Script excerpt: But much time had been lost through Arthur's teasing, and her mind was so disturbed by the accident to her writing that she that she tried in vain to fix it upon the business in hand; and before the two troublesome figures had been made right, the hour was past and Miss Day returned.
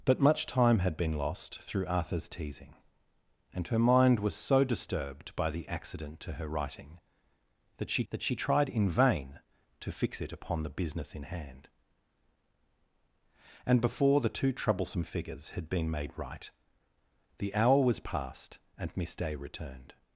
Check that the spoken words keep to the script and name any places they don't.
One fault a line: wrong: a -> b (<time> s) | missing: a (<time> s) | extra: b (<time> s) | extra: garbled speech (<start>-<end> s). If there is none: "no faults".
no faults